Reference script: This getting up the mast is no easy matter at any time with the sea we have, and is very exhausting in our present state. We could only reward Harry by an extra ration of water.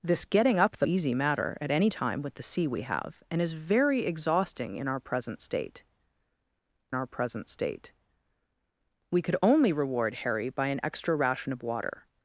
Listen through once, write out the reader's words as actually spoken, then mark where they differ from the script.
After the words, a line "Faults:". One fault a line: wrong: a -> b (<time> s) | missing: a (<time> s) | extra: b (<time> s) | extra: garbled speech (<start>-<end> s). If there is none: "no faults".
This getting up the easy matter at any time with the sea we have, and is very exhausting in our present state our present state. We could only reward Harry by an extra ration of water.
Faults:
missing: mast is no (0.9 s)
extra: our present state (6.9 s)